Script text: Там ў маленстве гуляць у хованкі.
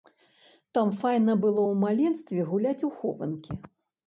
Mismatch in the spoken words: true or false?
true